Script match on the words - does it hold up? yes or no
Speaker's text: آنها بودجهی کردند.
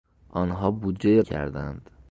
yes